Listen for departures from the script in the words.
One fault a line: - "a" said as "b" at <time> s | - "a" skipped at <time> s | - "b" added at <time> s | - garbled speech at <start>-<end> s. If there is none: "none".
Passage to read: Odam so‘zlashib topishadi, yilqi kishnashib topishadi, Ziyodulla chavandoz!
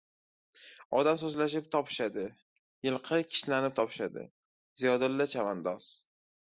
none